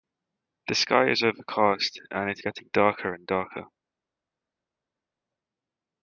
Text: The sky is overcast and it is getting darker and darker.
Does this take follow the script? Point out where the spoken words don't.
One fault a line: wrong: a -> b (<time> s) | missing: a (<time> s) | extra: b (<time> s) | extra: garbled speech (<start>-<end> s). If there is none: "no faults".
missing: is (2.4 s)